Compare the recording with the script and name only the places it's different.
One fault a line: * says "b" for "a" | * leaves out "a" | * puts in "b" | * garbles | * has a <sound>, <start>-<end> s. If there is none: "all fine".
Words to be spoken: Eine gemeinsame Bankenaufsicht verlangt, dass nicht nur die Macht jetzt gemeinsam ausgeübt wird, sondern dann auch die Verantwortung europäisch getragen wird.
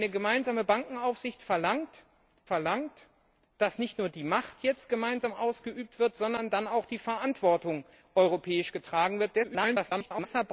* puts in "verlangt"
* garbles